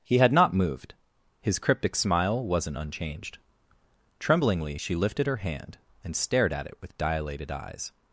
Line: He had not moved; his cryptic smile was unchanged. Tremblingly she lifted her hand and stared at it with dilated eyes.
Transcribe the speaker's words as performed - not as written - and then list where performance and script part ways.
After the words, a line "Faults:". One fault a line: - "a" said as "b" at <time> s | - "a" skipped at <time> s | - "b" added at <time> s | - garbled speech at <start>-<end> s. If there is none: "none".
He had not moved; his cryptic smile wasn't unchanged. Tremblingly she lifted her hand and stared at it with dilated eyes.
Faults:
- "was" said as "wasn't" at 2.4 s